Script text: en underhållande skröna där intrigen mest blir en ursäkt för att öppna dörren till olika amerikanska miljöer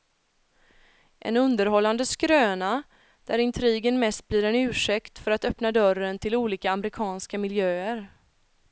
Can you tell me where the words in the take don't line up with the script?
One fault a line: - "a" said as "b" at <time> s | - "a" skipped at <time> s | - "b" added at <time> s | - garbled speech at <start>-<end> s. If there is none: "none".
none